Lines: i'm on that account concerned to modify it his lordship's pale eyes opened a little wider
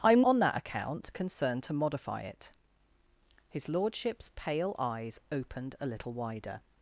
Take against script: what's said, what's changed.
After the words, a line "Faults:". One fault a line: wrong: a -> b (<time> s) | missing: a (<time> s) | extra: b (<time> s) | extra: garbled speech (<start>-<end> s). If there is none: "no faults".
i'm on that account concerned to modify it his lordship's pale eyes opened a little wider
Faults:
no faults